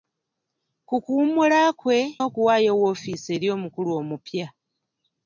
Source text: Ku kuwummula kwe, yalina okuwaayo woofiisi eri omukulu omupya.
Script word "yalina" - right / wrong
wrong